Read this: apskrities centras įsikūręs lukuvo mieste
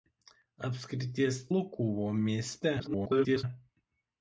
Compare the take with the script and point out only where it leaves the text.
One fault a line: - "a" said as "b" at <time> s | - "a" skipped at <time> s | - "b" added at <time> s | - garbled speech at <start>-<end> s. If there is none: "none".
- "centras įsikūręs" skipped at 1.4 s
- garbled speech at 2.8-3.4 s